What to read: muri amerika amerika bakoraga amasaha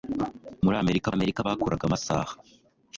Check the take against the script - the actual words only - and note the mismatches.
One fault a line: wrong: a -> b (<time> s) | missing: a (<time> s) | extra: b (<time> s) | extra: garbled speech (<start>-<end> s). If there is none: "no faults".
no faults